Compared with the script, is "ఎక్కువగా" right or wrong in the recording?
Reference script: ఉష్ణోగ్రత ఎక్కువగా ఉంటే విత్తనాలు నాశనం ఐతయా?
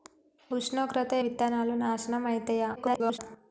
wrong